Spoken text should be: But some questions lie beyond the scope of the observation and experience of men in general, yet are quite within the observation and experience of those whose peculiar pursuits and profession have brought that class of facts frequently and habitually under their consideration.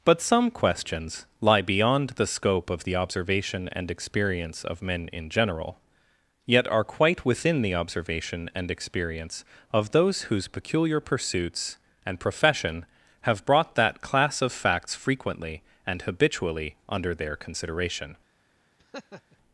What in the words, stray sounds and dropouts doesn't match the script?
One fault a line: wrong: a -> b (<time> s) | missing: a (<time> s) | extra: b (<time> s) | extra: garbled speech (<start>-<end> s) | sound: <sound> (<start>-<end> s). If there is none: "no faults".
sound: laugh (18.8-19.4 s)